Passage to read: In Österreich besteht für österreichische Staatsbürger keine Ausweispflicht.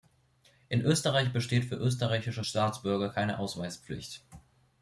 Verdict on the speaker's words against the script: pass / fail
pass